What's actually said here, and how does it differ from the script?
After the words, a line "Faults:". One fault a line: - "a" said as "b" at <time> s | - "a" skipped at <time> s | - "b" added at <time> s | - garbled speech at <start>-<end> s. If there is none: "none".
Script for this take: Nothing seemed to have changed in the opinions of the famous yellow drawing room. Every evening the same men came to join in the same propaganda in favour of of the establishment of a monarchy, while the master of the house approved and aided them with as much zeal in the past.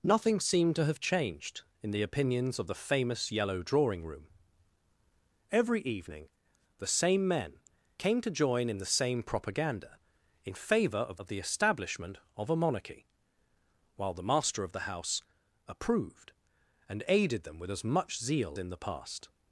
Nothing seemed to have changed in the opinions of the famous yellow drawing room. Every evening the same men came to join in the same propaganda in favour of of the establishment of a monarchy, while the master of the house approved and aided them with as much zeal in the past.
Faults:
none